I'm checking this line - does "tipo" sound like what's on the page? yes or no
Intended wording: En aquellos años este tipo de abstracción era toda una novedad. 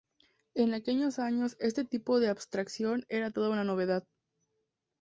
yes